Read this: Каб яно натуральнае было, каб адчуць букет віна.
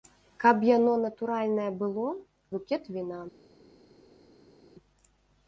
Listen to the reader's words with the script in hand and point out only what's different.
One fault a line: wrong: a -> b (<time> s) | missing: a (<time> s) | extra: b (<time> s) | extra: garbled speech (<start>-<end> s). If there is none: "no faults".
missing: каб адчуць (2.1 s)